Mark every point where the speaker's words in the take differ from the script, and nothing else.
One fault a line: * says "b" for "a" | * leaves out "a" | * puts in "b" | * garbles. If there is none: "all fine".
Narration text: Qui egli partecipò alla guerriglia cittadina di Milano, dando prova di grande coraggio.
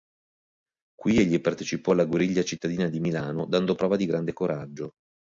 all fine